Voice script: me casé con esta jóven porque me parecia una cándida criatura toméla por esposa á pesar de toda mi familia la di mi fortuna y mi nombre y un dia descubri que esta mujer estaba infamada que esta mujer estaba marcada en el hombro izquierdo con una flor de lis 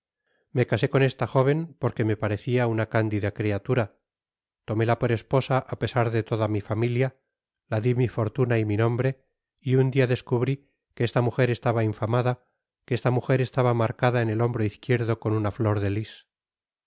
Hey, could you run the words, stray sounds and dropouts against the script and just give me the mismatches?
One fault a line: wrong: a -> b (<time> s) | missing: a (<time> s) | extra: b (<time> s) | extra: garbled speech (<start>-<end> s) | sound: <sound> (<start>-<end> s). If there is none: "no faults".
no faults